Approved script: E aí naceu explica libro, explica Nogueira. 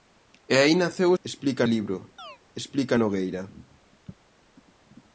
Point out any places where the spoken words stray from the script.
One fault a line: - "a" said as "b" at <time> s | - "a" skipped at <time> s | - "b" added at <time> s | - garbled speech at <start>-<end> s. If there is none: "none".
none